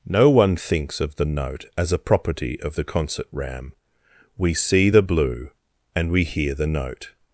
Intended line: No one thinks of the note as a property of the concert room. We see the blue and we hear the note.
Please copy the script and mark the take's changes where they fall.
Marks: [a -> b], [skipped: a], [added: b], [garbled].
No one thinks of the note as a property of the concert [room. -> ram] We see the blue and we hear the note.